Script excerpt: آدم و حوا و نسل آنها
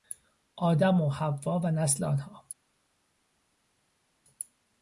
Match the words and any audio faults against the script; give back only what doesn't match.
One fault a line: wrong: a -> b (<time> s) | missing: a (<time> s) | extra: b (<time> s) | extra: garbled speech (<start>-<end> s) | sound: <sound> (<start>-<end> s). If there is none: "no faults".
no faults